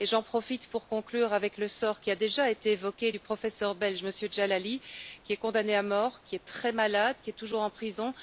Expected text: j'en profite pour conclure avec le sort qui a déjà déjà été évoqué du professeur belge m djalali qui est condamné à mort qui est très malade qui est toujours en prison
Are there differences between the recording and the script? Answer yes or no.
yes